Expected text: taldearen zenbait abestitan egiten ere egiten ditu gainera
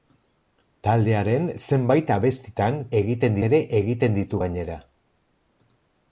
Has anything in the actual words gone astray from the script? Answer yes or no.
no